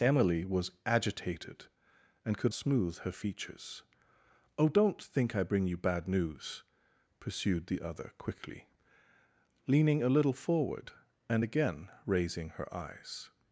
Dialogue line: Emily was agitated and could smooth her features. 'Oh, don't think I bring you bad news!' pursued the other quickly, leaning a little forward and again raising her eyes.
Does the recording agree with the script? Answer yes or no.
yes